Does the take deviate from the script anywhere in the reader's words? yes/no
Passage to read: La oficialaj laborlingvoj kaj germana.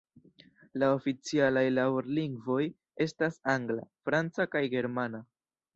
yes